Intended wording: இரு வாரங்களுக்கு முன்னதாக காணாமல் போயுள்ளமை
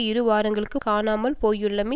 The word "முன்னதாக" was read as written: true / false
false